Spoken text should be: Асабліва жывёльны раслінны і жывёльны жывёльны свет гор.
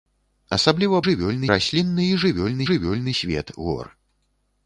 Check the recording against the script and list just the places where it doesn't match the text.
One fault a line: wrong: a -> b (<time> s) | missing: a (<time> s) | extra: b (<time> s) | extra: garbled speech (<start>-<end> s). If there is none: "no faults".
no faults